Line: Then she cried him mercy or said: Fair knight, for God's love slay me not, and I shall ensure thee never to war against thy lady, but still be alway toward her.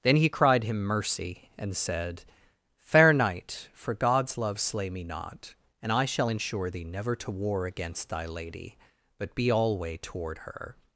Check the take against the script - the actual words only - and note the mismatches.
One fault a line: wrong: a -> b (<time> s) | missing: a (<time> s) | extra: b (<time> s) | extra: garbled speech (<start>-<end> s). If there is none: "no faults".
wrong: she -> he (0.1 s)
wrong: or -> and (1.6 s)
missing: still (9.3 s)